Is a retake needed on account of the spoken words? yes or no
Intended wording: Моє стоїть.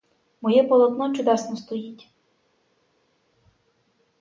yes